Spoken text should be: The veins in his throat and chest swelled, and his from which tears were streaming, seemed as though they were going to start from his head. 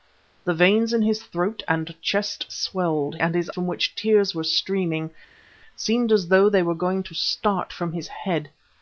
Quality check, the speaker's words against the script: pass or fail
pass